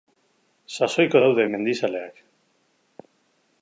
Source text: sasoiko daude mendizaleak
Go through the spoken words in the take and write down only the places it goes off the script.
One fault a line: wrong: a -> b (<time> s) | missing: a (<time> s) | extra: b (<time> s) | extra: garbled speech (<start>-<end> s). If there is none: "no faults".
no faults